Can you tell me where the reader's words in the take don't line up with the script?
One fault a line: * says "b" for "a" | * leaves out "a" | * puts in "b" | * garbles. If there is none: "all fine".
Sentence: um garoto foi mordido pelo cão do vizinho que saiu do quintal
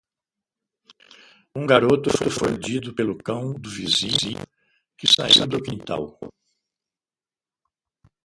all fine